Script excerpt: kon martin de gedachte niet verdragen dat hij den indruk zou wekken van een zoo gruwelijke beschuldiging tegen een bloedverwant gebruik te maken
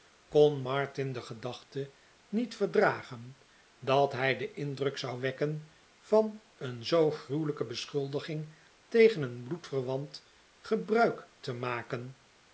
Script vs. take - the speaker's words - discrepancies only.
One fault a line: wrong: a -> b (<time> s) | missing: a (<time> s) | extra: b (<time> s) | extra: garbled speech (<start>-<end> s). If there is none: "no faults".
no faults